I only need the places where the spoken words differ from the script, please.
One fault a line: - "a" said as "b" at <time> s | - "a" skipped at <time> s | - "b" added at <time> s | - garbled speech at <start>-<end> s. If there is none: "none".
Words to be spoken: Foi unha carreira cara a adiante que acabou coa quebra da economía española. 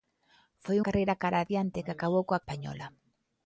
- "unha" skipped at 0.8 s
- "quebra da economía" skipped at 2.4 s